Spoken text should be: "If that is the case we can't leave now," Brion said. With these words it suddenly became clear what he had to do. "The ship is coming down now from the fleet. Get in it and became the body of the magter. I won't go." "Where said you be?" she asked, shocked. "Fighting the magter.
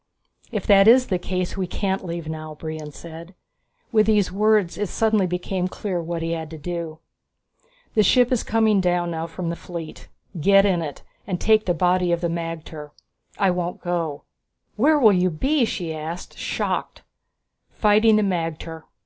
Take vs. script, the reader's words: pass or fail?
fail